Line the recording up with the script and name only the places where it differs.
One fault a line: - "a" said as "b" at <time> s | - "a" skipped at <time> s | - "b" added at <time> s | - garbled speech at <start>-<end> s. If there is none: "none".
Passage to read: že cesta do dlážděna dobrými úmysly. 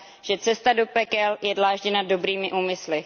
- "pekel je" added at 0.8 s